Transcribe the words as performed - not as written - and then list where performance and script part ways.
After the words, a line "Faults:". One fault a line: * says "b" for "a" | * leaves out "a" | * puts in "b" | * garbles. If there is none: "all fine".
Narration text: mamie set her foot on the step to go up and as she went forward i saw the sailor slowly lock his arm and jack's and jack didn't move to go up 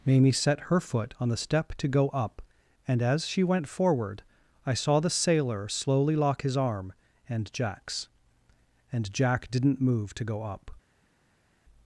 mamie set her foot on the step to go up and as she went forward i saw the sailor slowly lock his arm and jack's and jack didn't move to go up
Faults:
all fine